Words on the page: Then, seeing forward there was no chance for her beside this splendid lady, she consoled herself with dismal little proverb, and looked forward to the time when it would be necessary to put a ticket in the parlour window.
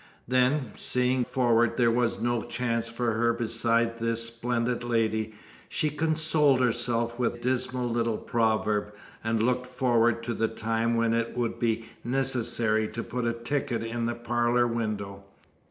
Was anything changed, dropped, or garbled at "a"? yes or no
no